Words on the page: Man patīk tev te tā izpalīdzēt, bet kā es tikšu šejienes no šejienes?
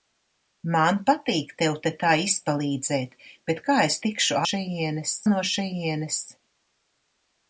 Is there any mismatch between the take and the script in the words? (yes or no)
no